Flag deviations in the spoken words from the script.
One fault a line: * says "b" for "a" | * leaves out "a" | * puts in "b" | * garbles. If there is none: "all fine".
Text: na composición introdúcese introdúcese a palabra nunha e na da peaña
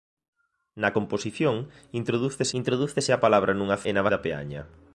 all fine